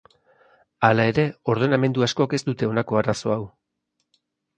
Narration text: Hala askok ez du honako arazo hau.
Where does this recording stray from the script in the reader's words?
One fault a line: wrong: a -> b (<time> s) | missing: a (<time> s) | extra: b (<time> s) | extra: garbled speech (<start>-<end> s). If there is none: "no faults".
extra: ere ordenamendu (1.1 s)
wrong: du -> dute (2.5 s)